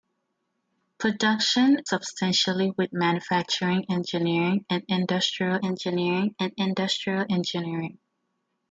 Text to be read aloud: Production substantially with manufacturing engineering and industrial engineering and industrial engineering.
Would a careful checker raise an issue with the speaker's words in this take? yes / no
no